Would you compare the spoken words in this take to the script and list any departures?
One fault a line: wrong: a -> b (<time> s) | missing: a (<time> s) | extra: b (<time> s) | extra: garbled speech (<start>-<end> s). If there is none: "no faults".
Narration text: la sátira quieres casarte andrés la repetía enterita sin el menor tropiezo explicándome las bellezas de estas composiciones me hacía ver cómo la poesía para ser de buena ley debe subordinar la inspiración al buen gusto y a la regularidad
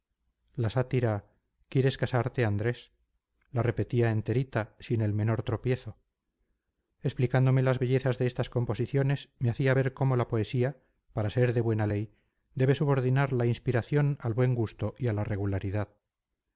no faults